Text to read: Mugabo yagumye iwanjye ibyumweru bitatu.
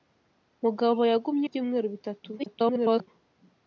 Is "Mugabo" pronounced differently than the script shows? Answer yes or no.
no